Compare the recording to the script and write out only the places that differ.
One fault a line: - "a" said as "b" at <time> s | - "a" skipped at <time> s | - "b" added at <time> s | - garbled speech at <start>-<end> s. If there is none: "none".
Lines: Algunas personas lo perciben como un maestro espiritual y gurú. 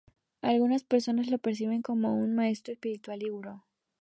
none